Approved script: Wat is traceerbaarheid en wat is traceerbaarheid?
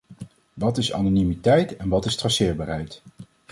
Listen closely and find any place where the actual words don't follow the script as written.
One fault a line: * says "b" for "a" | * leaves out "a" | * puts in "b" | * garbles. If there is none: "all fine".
* says "anonimiteit" for "traceerbaarheid"